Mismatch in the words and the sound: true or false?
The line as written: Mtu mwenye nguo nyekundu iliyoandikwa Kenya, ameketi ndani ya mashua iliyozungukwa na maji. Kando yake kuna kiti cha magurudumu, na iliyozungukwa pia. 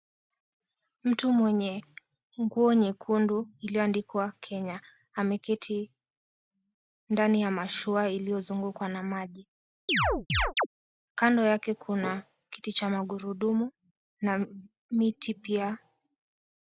true